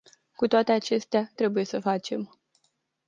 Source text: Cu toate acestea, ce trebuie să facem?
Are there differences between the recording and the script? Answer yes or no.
yes